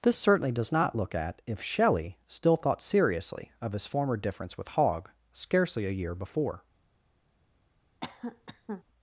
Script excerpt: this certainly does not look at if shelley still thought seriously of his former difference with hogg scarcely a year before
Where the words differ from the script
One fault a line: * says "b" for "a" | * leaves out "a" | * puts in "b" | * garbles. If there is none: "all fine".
all fine